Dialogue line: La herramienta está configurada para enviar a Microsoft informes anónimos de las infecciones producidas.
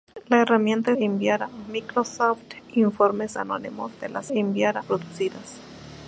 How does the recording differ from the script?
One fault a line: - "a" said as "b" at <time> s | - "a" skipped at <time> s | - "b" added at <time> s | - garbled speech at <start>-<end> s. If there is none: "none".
- "está configurada para" skipped at 0.9 s
- "infecciones" said as "enviar" at 4.3 s